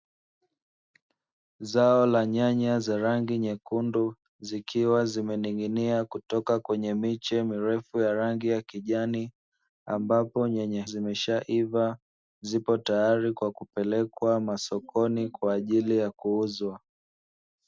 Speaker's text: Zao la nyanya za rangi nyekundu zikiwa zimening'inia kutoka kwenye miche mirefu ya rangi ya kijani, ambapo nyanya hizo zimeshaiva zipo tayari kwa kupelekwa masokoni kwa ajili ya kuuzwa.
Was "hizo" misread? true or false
true